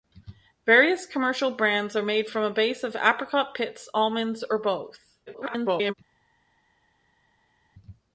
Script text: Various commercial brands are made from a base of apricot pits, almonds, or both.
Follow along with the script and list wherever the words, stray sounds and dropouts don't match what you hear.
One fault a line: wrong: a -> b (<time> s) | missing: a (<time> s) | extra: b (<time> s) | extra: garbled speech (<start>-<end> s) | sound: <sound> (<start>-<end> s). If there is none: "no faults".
extra: garbled speech (5.3-5.9 s)